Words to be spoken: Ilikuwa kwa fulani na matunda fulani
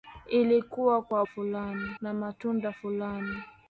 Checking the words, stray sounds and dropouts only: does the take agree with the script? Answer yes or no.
yes